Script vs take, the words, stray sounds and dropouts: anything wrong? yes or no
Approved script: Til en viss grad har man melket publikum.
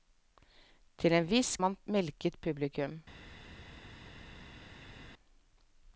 yes